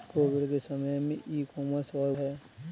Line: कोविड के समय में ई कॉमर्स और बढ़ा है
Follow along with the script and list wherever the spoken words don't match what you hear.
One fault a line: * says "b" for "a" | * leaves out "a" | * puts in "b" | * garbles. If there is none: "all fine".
* leaves out "बढ़ा"